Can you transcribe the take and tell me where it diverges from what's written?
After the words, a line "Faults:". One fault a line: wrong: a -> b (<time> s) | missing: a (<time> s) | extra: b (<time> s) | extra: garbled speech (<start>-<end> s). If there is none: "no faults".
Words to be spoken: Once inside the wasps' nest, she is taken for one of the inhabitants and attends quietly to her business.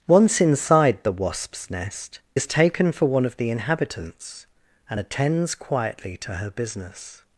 Once inside the wasps' nest, is taken for one of the inhabitants and attends quietly to her business.
Faults:
missing: she (2.2 s)